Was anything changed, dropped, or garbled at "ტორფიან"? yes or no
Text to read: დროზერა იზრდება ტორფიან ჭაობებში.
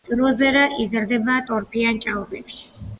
no